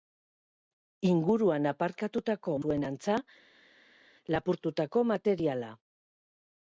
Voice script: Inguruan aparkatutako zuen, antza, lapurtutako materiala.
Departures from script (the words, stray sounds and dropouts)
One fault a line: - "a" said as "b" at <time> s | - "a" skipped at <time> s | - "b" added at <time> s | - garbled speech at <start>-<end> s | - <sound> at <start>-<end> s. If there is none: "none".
none